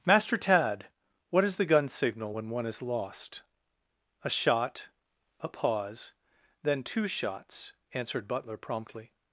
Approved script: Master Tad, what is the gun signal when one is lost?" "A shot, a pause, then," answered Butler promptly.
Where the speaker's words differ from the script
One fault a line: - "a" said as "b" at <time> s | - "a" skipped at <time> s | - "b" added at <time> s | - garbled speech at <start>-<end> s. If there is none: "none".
- "two shots" added at 6.8 s